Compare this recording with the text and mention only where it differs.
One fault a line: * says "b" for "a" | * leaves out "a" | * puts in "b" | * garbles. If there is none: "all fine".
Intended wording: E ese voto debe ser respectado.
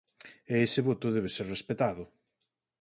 all fine